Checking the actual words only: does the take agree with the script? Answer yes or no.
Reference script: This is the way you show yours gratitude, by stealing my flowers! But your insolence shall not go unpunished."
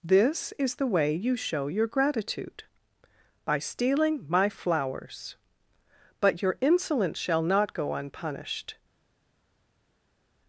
no